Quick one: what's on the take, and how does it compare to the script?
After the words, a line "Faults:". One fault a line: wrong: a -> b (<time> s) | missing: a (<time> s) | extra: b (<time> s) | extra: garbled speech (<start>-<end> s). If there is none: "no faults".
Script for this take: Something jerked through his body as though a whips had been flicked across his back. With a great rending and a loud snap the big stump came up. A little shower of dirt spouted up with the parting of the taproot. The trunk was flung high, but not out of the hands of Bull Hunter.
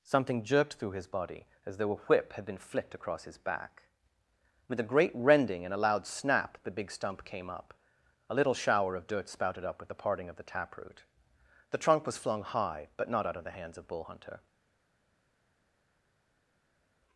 Something jerked through his body as though a whip had been flicked across his back. With a great rending and a loud snap the big stump came up. A little shower of dirt spouted up with the parting of the taproot. The trunk was flung high, but not out of the hands of Bull Hunter.
Faults:
wrong: whips -> whip (2.0 s)